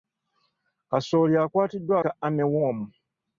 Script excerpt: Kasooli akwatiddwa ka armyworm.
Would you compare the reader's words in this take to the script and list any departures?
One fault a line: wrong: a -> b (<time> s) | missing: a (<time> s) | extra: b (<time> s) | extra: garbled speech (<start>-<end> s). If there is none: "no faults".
no faults